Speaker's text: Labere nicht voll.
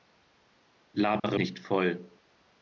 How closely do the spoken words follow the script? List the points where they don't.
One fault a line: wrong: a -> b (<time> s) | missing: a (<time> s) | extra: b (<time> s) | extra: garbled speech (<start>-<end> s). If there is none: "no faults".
no faults